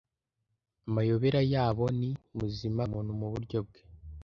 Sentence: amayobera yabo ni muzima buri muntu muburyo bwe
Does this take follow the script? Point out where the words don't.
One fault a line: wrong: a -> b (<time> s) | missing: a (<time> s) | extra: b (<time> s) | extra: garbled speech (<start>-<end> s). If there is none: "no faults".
missing: buri (2.8 s)